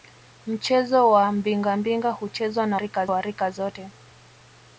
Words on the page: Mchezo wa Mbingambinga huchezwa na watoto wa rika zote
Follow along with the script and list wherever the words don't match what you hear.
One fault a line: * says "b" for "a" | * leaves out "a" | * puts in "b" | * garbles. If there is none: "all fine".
* says "rika" for "watoto"